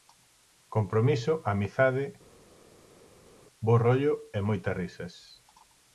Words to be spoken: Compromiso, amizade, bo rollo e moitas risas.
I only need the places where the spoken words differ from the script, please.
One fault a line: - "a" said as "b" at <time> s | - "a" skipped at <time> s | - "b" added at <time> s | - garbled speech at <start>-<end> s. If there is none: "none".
none